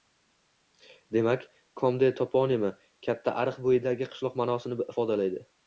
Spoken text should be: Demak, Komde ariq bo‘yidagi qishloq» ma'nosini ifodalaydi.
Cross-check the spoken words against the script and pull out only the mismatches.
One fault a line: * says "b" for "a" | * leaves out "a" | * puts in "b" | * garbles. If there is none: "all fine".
* puts in "toponimi katta"